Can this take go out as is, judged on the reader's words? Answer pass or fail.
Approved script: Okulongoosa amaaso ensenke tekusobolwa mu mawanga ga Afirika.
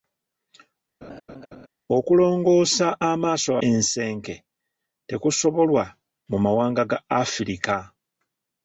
pass